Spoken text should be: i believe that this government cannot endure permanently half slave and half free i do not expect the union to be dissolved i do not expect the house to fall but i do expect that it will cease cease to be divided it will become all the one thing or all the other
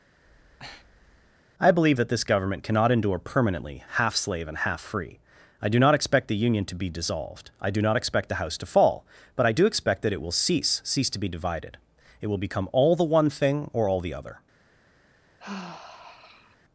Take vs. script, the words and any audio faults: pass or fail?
fail